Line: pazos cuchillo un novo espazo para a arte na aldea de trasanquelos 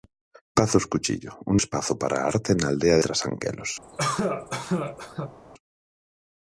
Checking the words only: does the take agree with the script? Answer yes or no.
no